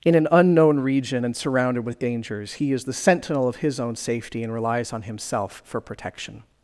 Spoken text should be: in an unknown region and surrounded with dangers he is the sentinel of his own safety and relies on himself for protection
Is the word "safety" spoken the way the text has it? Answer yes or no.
yes